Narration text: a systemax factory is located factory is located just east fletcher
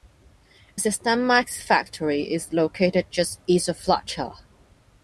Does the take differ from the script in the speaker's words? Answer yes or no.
yes